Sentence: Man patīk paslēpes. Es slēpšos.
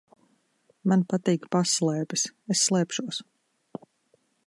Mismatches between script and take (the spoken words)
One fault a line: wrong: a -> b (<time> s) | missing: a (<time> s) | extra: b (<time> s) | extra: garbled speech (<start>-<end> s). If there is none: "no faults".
no faults